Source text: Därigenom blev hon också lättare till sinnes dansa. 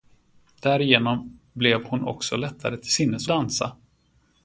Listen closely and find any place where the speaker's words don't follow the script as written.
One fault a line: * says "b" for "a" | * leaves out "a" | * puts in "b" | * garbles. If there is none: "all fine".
all fine